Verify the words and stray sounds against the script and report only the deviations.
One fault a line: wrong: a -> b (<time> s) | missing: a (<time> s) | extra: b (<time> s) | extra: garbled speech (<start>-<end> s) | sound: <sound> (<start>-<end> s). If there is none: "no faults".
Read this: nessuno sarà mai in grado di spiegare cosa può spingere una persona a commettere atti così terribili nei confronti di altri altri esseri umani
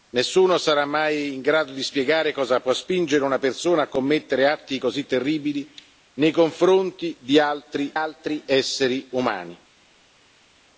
no faults